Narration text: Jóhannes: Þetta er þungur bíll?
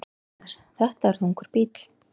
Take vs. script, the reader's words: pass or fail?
pass